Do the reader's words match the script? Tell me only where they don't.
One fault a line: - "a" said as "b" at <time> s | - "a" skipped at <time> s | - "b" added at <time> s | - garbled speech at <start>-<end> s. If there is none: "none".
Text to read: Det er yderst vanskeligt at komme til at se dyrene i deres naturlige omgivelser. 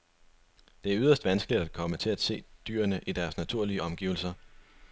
none